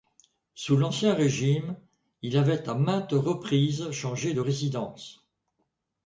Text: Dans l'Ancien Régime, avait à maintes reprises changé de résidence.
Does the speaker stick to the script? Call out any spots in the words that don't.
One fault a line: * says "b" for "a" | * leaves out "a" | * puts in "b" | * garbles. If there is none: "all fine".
* says "Sous" for "Dans"
* puts in "il"